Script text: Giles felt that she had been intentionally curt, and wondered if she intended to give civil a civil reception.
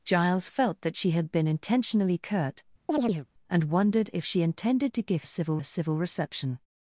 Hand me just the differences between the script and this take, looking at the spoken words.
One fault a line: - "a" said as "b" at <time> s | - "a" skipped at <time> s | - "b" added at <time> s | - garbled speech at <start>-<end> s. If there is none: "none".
none